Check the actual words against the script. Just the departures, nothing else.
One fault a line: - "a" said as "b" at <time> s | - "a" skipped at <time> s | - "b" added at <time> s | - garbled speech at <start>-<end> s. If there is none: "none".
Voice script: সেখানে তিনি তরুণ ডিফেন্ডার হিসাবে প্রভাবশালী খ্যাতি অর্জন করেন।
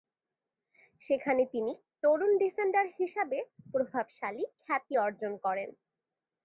none